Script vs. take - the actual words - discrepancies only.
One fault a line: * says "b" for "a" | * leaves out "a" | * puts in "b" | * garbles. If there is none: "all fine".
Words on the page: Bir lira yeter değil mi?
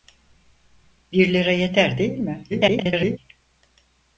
* garbles